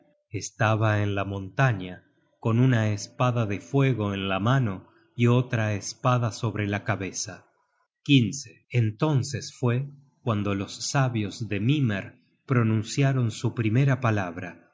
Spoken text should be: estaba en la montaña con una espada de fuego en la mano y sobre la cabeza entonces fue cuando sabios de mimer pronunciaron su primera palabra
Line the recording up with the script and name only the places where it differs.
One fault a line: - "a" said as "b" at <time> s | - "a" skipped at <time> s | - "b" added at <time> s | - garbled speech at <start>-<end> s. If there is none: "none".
- "otra espada" added at 5.3 s
- "los" added at 10.6 s